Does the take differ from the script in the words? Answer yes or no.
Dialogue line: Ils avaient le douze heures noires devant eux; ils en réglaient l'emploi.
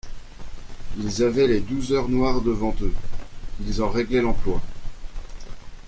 yes